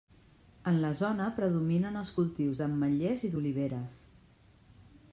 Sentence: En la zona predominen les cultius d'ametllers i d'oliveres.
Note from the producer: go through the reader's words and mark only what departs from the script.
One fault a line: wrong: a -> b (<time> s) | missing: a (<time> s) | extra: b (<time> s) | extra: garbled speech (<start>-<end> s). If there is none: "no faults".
wrong: les -> els (2.0 s)